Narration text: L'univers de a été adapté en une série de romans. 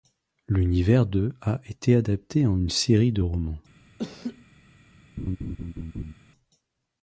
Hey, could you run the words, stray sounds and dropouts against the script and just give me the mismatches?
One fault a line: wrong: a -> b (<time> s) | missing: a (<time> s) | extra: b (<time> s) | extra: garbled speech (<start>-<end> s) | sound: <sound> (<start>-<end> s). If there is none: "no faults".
sound: laugh (4.0-4.5 s)
sound: laugh (5.2-6.1 s)